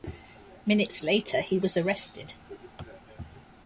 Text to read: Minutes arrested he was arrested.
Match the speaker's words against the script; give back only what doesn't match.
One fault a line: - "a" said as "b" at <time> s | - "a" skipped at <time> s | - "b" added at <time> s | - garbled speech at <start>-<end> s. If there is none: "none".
- "arrested" said as "later" at 1.0 s